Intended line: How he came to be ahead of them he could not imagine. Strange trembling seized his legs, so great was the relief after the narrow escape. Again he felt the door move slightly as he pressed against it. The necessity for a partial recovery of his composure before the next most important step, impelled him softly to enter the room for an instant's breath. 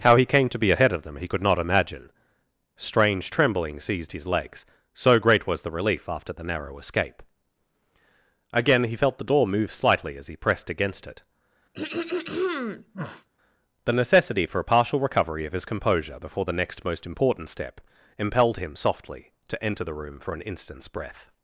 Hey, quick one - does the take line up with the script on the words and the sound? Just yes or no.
no